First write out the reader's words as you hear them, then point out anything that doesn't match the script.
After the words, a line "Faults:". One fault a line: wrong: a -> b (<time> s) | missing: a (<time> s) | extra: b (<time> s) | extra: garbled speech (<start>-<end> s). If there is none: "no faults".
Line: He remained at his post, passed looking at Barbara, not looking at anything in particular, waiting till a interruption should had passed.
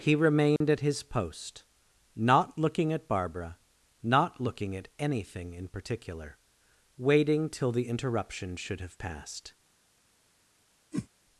He remained at his post, not looking at Barbara, not looking at anything in particular, waiting till the interruption should have passed.
Faults:
wrong: passed -> not (2.1 s)
wrong: a -> the (7.7 s)
wrong: had -> have (8.8 s)